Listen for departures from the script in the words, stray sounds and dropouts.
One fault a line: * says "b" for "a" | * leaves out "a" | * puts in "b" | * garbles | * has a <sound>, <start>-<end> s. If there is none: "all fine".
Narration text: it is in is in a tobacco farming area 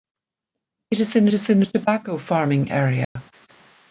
* has a dropout, 3.0-3.2 s